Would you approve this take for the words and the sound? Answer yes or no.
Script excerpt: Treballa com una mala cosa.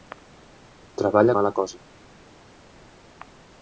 no